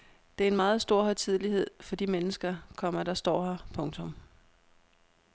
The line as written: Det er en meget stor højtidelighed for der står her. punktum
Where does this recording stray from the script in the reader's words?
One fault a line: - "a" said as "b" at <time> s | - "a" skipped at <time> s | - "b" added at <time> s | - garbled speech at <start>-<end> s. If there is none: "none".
- "de mennesker komma" added at 1.9 s